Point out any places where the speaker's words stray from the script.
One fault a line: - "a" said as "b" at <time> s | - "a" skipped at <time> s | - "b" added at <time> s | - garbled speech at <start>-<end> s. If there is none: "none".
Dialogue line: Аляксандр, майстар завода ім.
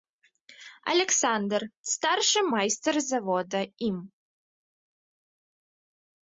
- "старшы" added at 1.9 s